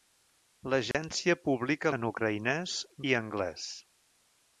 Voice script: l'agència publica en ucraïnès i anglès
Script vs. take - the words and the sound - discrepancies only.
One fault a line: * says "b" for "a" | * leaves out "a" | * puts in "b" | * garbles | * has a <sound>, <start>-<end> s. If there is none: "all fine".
* has a dropout, 0.9-0.9 s